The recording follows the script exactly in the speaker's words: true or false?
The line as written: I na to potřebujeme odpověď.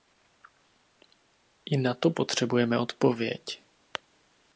true